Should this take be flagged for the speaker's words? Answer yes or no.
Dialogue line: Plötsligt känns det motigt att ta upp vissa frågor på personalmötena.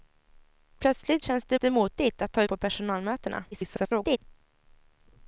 yes